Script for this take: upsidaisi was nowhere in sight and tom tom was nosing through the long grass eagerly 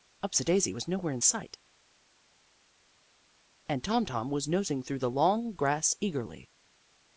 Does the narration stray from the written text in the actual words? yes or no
no